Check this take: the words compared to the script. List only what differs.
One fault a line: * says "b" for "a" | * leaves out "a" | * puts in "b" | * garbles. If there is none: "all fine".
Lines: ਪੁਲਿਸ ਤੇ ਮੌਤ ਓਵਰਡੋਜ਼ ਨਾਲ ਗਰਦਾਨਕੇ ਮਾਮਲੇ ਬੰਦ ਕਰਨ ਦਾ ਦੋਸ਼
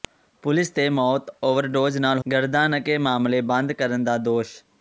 all fine